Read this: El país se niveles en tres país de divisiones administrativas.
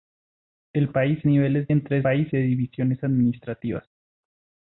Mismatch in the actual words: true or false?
false